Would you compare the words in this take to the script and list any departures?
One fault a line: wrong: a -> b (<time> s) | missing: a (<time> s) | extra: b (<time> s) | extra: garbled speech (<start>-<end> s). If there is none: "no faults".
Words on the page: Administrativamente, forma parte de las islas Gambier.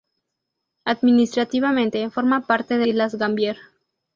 missing: las (2.9 s)